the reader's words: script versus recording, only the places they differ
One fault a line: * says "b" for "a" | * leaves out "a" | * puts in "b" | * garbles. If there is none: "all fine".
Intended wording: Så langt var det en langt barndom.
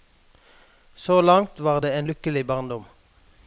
* says "lykkelig" for "langt"